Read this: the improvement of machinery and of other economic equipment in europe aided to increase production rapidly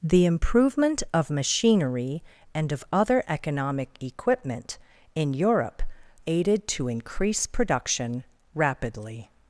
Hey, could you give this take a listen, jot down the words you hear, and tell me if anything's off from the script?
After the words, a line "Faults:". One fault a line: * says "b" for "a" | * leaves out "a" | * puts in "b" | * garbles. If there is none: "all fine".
the improvement of machinery and of other economic equipment in europe aided to increase production rapidly
Faults:
all fine